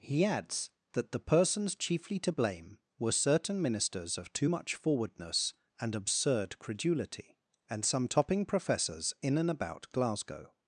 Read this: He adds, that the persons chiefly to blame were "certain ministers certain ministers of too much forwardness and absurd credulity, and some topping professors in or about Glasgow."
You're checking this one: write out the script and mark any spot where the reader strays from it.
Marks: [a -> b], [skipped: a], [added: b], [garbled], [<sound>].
He adds, that the persons chiefly to blame were "certain ministers [skipped: certain ministers] of too much forwardness and absurd credulity, and some topping professors in [or -> and] about Glasgow."